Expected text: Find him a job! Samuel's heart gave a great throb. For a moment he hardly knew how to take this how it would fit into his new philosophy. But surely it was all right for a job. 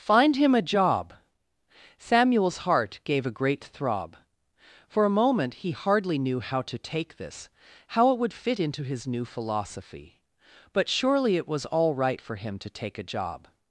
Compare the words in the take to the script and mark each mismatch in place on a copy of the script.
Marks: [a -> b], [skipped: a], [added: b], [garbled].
Find him a job! Samuel's heart gave a great throb. For a moment he hardly knew how to take this how it would fit into his new philosophy. But surely it was all right for [added: him to take] a job.